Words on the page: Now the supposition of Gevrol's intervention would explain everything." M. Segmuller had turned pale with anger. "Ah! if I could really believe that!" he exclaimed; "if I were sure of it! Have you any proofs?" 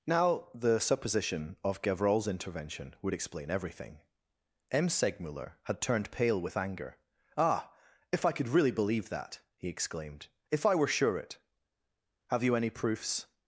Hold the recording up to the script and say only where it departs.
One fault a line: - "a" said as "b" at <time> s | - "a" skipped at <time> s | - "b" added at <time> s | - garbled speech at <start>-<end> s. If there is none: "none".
- "of" skipped at 11.2 s